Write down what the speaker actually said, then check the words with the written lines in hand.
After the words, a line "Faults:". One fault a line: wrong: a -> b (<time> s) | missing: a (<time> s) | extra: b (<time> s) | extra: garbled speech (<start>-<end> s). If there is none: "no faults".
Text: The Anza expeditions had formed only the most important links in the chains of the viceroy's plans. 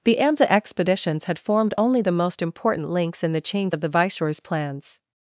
The Anza expeditions had formed only the most important links in the chains of the viceroy's plans.
Faults:
no faults